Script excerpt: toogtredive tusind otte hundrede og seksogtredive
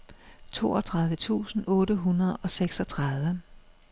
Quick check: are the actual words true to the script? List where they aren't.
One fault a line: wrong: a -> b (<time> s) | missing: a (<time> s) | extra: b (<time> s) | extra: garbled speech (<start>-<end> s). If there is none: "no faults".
no faults